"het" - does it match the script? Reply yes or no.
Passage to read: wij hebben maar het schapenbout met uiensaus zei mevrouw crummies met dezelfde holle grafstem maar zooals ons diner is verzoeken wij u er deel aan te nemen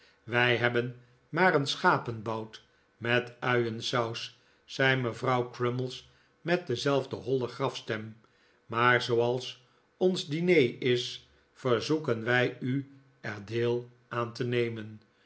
no